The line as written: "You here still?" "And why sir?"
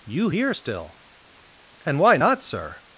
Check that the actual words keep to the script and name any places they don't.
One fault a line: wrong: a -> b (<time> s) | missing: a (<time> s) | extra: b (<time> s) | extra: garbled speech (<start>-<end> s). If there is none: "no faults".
extra: not (2.2 s)